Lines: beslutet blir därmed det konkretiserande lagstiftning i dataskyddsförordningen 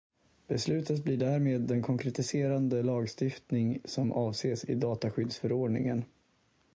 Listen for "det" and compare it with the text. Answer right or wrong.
wrong